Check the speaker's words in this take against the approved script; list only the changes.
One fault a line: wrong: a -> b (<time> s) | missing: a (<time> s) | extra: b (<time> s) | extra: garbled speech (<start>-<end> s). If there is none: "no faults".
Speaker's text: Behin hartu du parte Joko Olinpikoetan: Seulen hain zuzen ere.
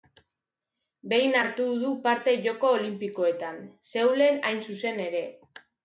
no faults